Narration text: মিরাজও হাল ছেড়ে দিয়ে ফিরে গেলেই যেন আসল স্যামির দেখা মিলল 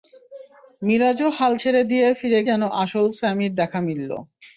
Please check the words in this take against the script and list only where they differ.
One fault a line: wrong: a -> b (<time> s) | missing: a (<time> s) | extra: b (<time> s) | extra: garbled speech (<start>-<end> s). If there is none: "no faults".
missing: গেলেই (2.4 s)